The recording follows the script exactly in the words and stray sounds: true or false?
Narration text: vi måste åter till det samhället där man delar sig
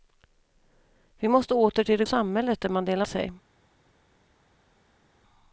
true